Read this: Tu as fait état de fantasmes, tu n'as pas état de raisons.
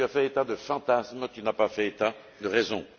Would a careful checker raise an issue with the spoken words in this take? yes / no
yes